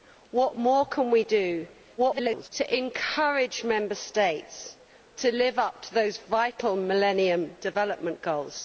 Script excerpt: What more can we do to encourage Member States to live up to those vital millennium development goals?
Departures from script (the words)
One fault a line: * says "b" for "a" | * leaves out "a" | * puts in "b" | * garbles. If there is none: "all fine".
* garbles